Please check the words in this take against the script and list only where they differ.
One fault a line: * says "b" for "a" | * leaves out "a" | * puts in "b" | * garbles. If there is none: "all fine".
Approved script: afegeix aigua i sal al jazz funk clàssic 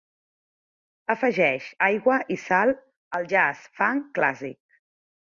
all fine